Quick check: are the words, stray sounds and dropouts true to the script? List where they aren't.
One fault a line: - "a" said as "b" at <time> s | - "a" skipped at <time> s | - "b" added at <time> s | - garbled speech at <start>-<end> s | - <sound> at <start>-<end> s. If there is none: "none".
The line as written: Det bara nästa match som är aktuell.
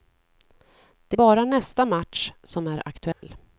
- dropout at 3.1-3.2 s